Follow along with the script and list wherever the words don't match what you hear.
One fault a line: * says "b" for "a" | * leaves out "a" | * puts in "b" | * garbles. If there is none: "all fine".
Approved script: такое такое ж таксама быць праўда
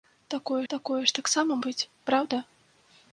all fine